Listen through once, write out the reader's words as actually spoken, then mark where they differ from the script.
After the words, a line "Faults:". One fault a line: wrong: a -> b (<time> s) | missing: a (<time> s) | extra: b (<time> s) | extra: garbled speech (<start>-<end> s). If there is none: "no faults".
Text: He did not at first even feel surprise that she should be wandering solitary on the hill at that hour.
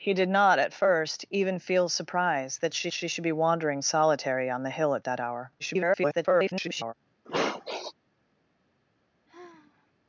He did not at first even feel surprise that she she should be wandering solitary on the hill at that hour. [garbled]
Faults:
extra: she (2.9 s)
extra: garbled speech (5.6-6.9 s)